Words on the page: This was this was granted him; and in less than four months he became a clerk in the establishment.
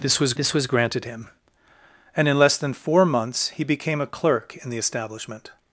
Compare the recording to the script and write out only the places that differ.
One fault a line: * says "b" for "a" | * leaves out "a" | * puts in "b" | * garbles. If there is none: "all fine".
all fine